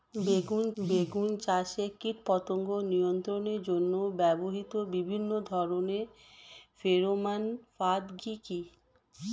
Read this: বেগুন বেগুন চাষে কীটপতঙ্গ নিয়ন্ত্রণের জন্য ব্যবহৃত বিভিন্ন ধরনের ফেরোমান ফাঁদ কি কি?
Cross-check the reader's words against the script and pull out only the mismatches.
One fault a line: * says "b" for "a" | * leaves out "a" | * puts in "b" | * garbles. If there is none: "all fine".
all fine